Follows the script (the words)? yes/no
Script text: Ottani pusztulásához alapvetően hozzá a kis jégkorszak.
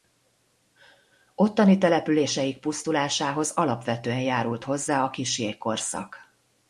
no